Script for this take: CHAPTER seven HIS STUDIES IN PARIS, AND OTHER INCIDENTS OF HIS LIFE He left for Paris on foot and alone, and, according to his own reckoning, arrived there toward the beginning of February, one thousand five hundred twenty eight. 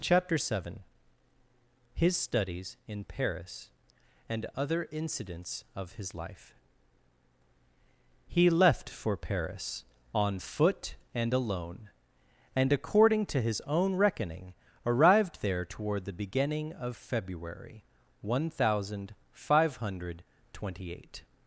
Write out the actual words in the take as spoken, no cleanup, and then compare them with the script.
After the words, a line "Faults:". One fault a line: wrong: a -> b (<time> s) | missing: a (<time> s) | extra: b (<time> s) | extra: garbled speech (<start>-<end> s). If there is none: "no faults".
CHAPTER seven HIS STUDIES IN PARIS, AND OTHER INCIDENTS OF HIS LIFE He left for Paris on foot and alone, and, according to his own reckoning, arrived there toward the beginning of February, one thousand five hundred twenty eight.
Faults:
no faults